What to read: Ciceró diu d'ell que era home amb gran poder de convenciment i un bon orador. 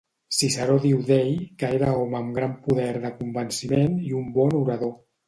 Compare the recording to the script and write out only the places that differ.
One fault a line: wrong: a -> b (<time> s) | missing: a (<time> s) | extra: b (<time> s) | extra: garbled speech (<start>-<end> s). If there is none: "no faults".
no faults